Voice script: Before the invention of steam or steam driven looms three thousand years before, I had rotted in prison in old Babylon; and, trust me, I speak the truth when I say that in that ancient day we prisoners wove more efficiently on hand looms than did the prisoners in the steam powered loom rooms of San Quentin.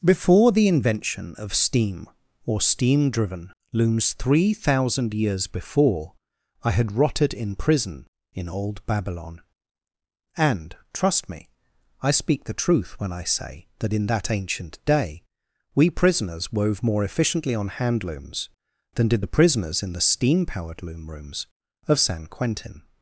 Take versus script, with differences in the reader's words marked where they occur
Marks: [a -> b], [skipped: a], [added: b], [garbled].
Before the invention of steam or steam driven looms three thousand years before, I had rotted in prison in old Babylon; and, trust me, I speak the truth when I say that in that ancient day we prisoners wove more efficiently on hand looms than did the prisoners in the steam powered loom rooms of San Quentin.